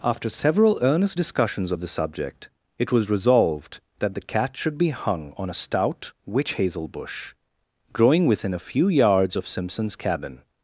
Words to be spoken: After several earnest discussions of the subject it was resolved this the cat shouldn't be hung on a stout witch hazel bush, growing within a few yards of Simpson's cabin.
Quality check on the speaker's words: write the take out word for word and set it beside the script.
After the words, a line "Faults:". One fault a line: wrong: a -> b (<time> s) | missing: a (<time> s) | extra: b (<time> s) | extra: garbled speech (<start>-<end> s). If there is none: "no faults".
After several earnest discussions of the subject it was resolved that the cat should be hung on a stout witch hazel bush, growing within a few yards of Simpson's cabin.
Faults:
wrong: this -> that (4.0 s)
wrong: shouldn't -> should (4.5 s)